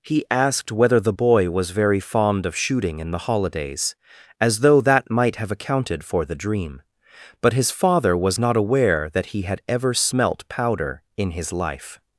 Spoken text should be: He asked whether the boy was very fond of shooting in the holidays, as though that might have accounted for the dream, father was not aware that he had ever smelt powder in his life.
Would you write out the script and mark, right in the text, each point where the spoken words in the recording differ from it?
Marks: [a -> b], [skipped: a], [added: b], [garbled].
He asked whether the boy was very fond of shooting in the holidays, as though that might have accounted for the dream, [added: but his] father was not aware that he had ever smelt powder in his life.